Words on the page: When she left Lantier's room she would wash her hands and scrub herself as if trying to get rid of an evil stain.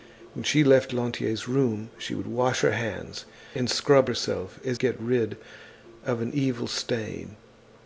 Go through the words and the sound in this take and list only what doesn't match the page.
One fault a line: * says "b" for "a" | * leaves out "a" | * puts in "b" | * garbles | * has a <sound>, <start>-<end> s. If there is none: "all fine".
* leaves out "if trying to"